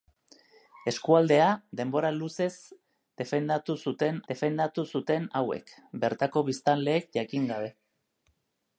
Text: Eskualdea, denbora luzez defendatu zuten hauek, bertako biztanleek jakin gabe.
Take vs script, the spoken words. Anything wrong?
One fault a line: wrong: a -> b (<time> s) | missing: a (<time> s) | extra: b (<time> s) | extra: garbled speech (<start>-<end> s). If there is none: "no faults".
extra: defendatu zuten (4.3 s)